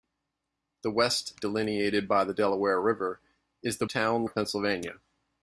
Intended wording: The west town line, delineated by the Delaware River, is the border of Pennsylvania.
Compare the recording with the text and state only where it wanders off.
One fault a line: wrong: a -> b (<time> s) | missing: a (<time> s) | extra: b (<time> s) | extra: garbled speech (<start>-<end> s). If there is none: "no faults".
missing: town line (1.4 s)
wrong: border -> town (3.9 s)